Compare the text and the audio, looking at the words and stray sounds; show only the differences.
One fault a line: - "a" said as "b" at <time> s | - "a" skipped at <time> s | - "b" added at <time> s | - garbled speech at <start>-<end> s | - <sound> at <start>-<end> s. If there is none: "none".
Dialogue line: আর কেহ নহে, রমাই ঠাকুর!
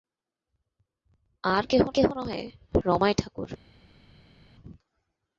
- "কেহ" added at 1.9 s